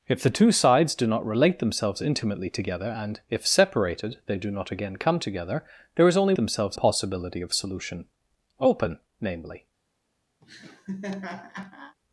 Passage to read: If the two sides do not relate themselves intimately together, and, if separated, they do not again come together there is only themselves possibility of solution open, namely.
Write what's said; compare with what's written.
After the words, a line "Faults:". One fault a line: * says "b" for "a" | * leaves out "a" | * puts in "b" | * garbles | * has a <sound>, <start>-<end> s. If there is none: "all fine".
If the two sides do not relate themselves intimately together, and, if separated, they do not again come together there is only themselves possibility of solution open, namely.
Faults:
* has a laugh, 10.4-12.0 s